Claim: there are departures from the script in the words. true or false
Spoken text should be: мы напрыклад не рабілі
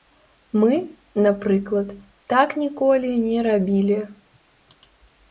true